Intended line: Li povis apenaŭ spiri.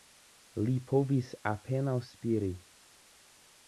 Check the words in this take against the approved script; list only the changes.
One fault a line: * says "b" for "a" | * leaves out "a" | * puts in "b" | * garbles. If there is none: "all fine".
all fine